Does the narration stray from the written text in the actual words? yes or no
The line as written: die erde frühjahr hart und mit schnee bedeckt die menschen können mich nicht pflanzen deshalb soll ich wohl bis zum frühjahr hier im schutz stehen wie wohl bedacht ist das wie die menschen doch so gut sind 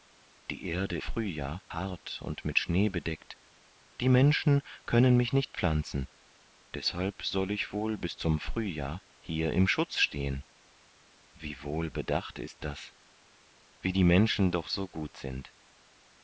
no